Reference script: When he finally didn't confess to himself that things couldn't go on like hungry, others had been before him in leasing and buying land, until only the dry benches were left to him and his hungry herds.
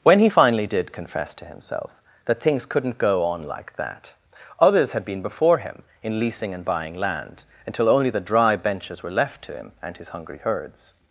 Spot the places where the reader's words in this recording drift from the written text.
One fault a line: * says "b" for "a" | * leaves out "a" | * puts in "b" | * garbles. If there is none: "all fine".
* says "did" for "didn't"
* says "that" for "hungry"